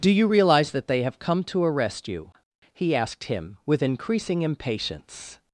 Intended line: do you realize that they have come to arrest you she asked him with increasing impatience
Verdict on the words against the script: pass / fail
fail